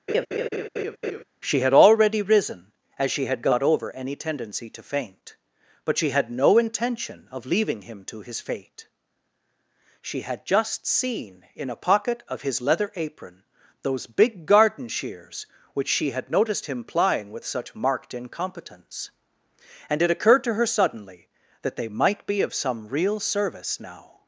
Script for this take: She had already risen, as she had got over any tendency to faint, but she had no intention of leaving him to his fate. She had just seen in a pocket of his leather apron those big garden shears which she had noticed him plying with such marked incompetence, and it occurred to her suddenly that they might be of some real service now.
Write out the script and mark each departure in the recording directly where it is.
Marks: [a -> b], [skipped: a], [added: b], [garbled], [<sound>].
[laugh] She had already risen, as she had got over any tendency to faint, but she had no intention of leaving him to his fate. She had just seen in a pocket of his leather apron those big garden shears which she had noticed him plying with such marked incompetence, and it occurred to her suddenly that they might be of some real service now.